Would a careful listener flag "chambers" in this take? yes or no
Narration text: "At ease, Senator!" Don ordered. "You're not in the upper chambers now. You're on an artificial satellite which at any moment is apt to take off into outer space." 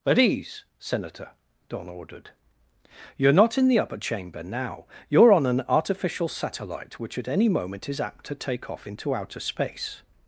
yes